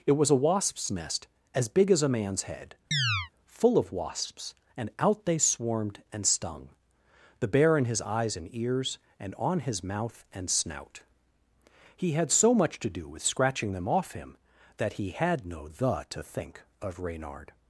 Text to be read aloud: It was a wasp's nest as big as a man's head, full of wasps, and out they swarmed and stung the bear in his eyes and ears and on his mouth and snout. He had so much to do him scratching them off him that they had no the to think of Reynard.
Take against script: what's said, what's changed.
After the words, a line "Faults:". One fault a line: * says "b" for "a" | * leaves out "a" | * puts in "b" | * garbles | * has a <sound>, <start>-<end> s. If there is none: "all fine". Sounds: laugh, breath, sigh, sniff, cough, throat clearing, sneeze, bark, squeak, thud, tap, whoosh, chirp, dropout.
It was a wasp's nest as big as a man's head, full of wasps, and out they swarmed and stung the bear in his eyes and ears and on his mouth and snout. He had so much to do with scratching them off him that he had no the to think of Reynard.
Faults:
* has a chirp, 2.9-3.3 s
* says "with" for "him"
* says "he" for "they"